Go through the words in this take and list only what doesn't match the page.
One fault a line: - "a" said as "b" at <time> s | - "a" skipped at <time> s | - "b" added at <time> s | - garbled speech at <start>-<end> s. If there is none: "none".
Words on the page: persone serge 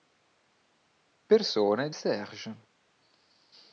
none